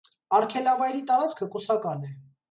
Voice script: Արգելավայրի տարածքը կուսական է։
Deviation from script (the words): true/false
false